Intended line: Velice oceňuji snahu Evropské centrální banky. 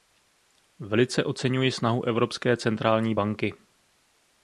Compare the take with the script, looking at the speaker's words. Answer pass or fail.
pass